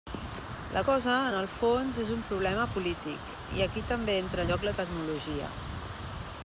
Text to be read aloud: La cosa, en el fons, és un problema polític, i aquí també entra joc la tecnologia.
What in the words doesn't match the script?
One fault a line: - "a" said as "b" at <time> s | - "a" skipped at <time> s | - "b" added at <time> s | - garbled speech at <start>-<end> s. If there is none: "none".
none